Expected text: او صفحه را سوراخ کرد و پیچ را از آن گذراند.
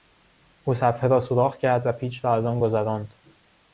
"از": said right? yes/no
yes